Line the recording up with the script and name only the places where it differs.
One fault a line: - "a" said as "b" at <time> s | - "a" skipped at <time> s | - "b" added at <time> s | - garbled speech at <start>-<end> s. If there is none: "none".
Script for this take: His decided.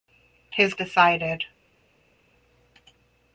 none